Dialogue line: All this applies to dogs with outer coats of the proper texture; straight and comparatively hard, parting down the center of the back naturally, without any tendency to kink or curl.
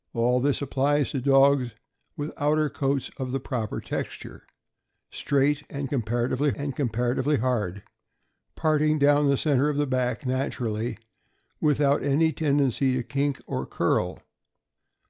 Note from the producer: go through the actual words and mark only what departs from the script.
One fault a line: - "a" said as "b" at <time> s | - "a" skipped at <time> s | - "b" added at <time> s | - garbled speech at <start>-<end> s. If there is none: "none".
- "and comparatively" added at 6.5 s